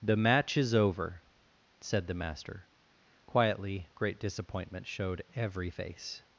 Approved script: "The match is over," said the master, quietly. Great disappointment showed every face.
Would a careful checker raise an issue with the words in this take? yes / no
no